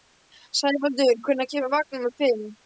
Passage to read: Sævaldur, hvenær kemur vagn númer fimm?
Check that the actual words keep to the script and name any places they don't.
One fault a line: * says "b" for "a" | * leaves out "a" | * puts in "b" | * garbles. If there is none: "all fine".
all fine